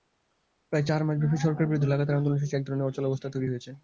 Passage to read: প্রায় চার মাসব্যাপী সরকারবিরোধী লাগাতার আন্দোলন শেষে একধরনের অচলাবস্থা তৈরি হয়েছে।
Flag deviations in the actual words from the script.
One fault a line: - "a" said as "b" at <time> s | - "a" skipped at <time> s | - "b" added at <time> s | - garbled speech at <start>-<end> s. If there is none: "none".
none